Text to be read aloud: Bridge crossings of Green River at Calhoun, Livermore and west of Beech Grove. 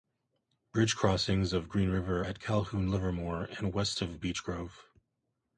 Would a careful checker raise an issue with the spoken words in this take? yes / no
no